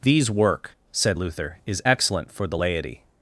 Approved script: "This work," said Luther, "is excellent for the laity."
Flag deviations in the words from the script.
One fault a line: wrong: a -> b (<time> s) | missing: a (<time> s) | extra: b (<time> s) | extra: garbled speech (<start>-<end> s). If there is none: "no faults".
wrong: This -> These (0.0 s)